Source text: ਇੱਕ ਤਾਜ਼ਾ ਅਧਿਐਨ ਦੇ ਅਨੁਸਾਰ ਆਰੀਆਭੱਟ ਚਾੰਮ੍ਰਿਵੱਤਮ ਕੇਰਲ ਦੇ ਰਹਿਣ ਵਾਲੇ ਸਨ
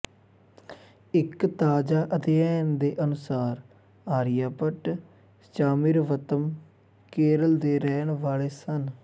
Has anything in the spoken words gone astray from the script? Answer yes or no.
no